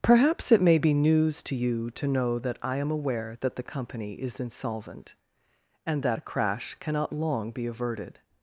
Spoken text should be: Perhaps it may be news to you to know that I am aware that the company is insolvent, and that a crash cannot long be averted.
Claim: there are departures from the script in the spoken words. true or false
false